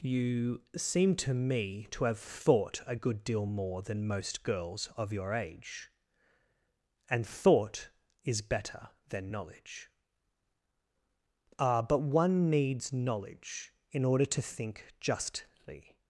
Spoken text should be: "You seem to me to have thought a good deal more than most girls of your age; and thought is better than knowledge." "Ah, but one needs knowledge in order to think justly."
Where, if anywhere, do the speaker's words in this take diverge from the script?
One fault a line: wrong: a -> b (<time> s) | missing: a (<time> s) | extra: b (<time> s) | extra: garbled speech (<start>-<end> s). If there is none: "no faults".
no faults